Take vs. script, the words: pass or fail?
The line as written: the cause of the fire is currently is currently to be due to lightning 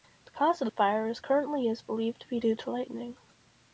fail